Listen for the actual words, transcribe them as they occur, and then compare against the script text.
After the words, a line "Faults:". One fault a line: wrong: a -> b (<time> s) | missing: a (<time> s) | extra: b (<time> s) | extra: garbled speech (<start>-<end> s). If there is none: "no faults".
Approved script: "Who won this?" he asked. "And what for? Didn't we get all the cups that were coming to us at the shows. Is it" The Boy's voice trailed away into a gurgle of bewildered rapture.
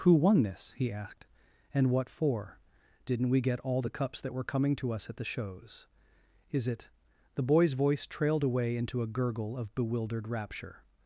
"Who won this?" he asked. "And what for? Didn't we get all the cups that were coming to us at the shows. Is it" The Boy's voice trailed away into a gurgle of bewildered rapture.
Faults:
no faults